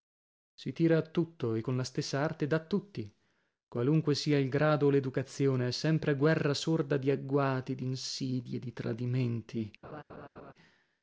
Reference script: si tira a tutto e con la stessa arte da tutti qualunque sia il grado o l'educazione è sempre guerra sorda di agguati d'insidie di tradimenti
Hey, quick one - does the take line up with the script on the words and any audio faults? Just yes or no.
no